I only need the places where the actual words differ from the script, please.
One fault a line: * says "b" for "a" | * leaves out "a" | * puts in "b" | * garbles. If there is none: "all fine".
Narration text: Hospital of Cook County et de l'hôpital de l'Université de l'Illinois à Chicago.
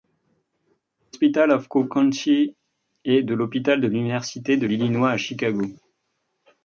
all fine